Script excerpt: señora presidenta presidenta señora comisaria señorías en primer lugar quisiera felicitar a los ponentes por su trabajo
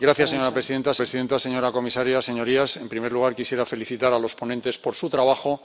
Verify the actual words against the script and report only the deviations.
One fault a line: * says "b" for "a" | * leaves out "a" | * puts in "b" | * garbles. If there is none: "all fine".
all fine